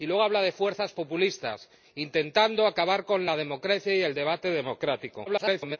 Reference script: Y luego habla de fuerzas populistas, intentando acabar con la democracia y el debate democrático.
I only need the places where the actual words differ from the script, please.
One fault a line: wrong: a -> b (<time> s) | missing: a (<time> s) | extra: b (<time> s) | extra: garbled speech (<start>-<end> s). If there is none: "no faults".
extra: garbled speech (5.3-5.8 s)